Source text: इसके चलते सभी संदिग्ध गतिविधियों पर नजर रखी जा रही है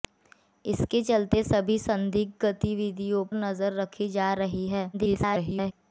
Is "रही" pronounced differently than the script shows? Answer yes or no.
no